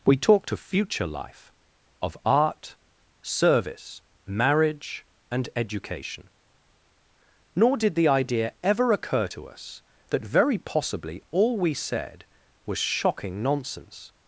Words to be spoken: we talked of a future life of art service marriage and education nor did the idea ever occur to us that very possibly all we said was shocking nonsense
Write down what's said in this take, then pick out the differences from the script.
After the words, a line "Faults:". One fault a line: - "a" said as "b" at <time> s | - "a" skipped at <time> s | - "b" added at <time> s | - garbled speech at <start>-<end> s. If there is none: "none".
we talked of future life of art service marriage and education nor did the idea ever occur to us that very possibly all we said was shocking nonsense
Faults:
- "a" skipped at 0.6 s